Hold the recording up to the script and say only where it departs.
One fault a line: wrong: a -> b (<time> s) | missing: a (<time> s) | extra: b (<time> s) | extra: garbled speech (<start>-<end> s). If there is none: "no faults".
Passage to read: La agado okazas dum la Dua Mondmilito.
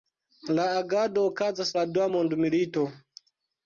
missing: dum (1.7 s)